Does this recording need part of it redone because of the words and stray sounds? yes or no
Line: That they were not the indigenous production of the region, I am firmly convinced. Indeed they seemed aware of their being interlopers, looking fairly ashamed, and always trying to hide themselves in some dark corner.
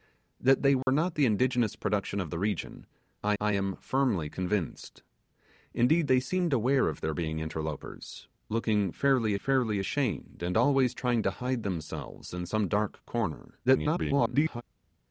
yes